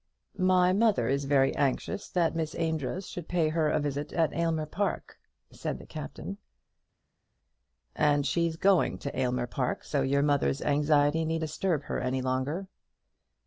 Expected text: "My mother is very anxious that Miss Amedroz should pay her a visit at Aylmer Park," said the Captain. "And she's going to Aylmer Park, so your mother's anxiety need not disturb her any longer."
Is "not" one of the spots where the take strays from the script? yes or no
yes